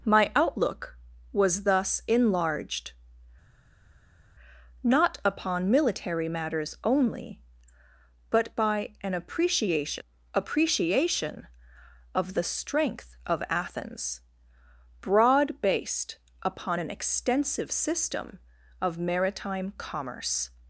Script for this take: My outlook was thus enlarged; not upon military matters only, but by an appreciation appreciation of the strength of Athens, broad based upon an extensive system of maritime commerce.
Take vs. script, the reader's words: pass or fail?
pass